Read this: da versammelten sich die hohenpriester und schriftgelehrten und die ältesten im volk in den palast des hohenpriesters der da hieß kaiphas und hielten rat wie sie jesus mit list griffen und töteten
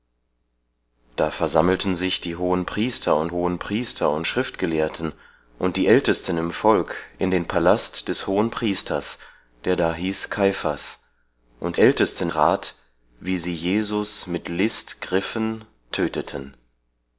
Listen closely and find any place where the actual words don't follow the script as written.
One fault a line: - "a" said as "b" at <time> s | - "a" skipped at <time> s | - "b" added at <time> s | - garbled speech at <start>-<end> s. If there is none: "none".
- "hohenpriester und" added at 3.3 s
- "hielten" said as "ältesten" at 11.8 s
- "und" skipped at 15.6 s